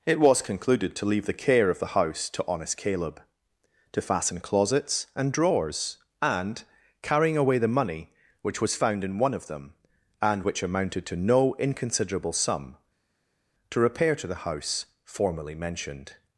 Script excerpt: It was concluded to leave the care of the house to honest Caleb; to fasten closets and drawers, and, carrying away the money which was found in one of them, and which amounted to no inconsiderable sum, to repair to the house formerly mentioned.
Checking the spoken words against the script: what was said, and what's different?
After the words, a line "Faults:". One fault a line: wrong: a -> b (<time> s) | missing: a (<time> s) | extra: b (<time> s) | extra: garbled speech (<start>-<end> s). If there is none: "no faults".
It was concluded to leave the care of the house to honest Caleb; to fasten closets and drawers, and, carrying away the money which was found in one of them, and which amounted to no inconsiderable sum, to repair to the house formerly mentioned.
Faults:
no faults